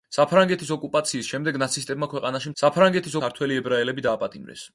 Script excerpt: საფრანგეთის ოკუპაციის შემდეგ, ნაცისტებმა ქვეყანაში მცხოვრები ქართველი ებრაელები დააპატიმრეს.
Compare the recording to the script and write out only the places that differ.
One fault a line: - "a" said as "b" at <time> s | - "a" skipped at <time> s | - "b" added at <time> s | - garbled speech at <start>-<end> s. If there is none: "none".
- "მცხოვრები" said as "საფრანგეთის" at 2.6 s